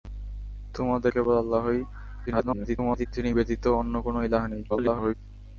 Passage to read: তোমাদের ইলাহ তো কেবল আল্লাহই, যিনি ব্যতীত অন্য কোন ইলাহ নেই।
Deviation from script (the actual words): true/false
true